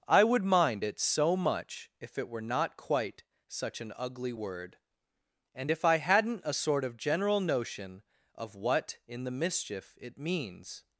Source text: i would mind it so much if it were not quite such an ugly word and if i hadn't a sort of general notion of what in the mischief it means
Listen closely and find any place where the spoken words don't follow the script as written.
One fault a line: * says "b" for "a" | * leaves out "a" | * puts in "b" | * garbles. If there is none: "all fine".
all fine